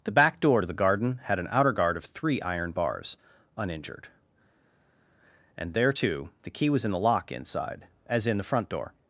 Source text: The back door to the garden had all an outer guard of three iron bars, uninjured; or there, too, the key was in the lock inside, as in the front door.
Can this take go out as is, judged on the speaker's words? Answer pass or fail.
fail